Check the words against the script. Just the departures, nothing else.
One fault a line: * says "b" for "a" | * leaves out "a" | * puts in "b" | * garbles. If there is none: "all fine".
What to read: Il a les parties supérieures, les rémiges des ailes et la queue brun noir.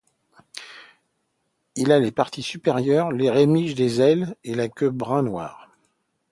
all fine